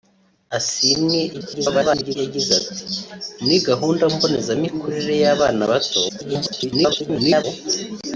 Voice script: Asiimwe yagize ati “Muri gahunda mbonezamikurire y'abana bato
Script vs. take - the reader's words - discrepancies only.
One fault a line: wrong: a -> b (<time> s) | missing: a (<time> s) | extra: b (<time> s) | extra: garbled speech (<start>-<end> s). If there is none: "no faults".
extra: garbled speech (1.3-2.2 s)
extra: garbled speech (6.1-7.4 s)